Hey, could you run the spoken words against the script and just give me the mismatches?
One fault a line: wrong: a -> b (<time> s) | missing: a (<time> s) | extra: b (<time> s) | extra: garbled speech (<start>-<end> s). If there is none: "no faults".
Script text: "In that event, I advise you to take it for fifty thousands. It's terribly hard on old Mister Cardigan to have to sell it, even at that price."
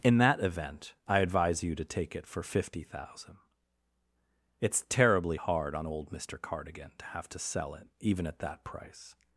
wrong: thousands -> thousand (2.8 s)